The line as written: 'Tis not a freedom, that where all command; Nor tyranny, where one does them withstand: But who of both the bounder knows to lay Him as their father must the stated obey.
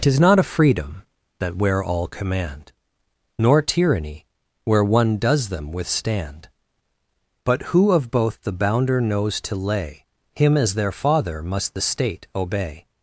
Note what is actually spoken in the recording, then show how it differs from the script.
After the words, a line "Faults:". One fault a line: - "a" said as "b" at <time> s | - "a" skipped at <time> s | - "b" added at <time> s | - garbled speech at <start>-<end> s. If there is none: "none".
'Tis not a freedom, that where all command; Nor tyranny, where one does them withstand: But who of both the bounder knows to lay Him as their father must the state obey.
Faults:
- "stated" said as "state" at 11.8 s